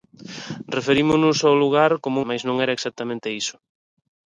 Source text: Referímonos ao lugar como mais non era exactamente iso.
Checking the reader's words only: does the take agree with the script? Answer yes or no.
yes